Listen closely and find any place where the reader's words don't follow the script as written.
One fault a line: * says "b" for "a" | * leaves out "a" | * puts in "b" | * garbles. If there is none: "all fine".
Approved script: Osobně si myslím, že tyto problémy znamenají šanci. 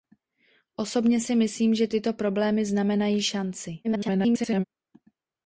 * garbles